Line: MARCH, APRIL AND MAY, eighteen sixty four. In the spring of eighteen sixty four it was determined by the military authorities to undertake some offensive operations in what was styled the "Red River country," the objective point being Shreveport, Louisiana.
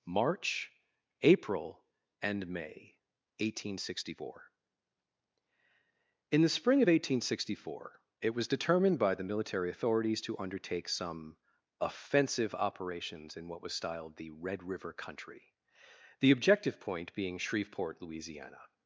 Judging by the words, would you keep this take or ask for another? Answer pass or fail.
pass